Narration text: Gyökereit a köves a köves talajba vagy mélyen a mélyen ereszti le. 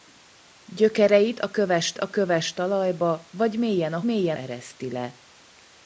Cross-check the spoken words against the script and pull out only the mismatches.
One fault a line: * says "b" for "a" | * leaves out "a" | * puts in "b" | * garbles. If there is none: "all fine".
all fine